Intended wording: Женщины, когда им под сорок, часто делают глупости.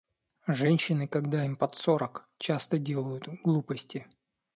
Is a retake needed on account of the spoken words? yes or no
no